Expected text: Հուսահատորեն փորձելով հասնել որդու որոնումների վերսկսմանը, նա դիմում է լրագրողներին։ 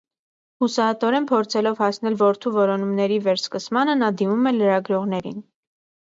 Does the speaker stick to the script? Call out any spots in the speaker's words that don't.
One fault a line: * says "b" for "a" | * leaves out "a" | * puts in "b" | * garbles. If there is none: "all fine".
all fine